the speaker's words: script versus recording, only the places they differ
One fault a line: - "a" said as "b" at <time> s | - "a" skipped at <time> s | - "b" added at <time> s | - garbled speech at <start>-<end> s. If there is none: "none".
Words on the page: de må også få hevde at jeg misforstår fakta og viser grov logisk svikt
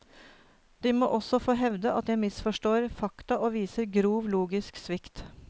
none